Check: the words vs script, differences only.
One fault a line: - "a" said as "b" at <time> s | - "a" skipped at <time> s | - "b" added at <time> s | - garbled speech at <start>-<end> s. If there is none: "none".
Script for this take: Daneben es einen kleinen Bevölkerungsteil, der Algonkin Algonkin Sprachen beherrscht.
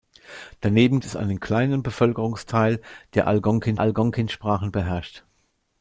none